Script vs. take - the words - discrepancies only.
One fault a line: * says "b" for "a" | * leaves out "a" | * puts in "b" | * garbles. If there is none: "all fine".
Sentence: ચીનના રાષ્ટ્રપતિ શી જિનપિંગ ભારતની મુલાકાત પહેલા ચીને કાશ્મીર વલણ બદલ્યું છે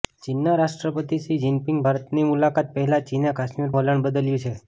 all fine